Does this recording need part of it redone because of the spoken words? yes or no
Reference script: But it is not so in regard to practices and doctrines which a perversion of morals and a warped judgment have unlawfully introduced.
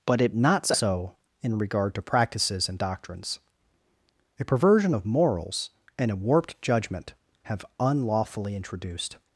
yes